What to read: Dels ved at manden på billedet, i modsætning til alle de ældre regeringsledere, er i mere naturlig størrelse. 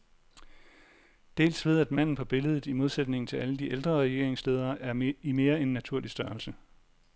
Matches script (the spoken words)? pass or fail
fail